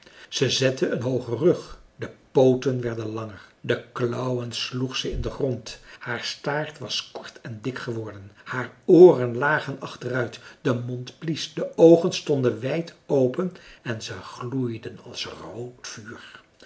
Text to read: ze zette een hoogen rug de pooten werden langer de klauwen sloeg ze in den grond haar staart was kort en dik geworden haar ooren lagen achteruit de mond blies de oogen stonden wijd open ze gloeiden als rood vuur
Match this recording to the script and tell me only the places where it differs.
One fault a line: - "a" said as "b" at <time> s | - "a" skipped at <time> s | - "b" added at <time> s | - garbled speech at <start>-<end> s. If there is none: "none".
- "en" added at 13.8 s